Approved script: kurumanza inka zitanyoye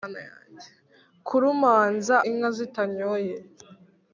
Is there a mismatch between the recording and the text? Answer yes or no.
no